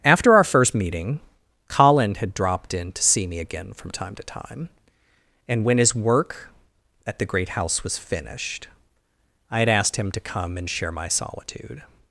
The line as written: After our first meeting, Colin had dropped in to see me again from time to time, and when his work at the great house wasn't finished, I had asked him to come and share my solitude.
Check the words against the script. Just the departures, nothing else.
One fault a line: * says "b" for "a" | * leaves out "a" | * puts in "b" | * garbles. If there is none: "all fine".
* says "was" for "wasn't"